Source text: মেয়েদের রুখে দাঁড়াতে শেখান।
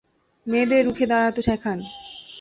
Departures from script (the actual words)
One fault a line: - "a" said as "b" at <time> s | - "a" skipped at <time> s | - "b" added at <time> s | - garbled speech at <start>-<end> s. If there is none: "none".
none